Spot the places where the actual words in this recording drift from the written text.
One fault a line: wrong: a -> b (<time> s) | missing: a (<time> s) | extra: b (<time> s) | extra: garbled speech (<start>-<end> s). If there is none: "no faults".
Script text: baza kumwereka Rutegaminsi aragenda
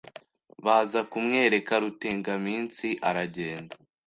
no faults